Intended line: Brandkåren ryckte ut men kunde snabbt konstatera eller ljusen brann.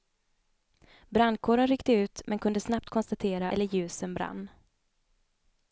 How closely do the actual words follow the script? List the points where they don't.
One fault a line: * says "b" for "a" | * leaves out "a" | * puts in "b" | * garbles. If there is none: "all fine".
all fine